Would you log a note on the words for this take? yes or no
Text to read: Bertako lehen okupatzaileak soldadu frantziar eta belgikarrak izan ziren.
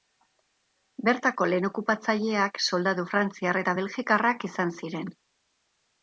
no